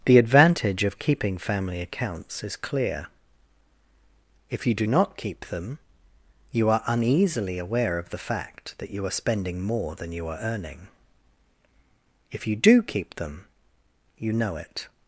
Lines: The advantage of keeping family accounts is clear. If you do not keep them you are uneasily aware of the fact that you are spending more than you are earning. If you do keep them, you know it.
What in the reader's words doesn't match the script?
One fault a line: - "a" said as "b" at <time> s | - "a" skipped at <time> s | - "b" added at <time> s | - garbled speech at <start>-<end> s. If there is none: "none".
none